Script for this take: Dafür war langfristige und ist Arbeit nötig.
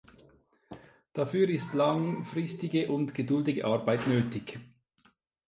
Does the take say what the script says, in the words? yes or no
no